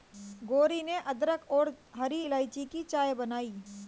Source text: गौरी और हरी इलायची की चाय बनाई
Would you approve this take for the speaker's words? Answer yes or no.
no